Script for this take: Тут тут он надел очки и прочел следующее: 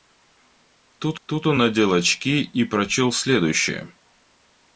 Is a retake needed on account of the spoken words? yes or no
no